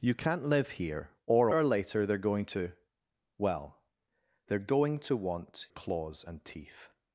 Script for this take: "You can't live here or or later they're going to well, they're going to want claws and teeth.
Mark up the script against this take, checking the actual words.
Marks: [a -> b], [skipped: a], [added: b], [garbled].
"You can't live here or or later they're going to well, they're going to want claws and teeth.